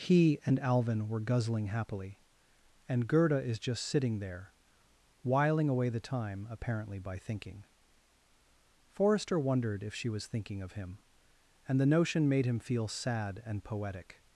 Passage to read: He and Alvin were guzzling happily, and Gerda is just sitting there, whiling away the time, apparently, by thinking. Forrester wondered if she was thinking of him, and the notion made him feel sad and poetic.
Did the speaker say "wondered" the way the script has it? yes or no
yes